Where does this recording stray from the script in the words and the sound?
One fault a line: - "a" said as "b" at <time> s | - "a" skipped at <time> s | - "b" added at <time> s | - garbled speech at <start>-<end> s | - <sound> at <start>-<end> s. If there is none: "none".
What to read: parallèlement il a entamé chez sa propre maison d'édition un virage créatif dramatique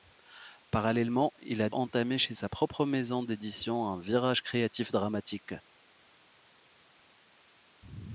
none